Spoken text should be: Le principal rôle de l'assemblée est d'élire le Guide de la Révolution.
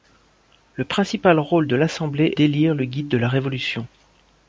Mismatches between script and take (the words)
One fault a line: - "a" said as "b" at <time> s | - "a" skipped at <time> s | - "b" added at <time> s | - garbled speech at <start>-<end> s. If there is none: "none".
- "est" skipped at 2.3 s